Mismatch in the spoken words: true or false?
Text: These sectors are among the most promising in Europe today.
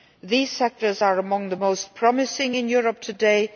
false